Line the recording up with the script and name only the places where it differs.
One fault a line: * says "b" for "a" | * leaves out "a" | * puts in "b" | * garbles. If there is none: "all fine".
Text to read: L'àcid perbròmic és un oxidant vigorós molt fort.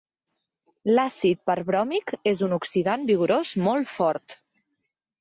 all fine